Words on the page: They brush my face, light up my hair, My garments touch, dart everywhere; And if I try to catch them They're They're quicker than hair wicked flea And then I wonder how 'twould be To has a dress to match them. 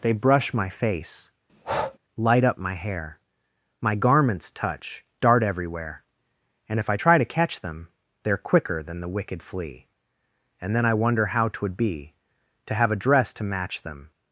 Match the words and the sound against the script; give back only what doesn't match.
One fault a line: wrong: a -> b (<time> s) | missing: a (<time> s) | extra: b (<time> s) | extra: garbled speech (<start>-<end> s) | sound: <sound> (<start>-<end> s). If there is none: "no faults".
sound: breath (1.5-2.0 s)
missing: They're (8.5 s)
wrong: hair -> the (9.0 s)
wrong: has -> have (12.7 s)